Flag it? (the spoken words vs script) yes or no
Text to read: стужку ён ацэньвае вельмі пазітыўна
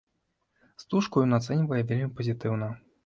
no